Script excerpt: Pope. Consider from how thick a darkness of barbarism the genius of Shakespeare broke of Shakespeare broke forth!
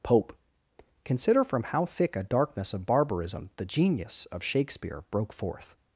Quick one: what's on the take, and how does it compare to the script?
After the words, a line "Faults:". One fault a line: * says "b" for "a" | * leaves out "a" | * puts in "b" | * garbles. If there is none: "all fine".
Pope. Consider from how thick a darkness of barbarism the genius of Shakespeare broke forth!
Faults:
* leaves out "of Shakespeare broke"